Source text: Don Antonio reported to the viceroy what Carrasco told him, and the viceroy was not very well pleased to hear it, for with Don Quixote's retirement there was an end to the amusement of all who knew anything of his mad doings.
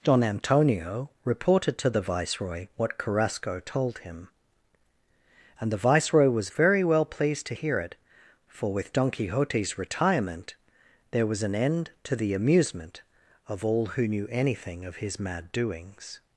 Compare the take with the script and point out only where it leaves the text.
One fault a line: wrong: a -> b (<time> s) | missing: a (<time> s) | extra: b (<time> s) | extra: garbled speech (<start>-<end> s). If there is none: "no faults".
missing: not (6.5 s)